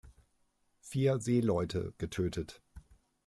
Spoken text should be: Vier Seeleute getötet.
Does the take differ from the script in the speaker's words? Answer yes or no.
no